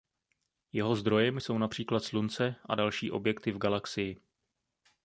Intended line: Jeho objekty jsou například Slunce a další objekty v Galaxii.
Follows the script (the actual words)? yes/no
no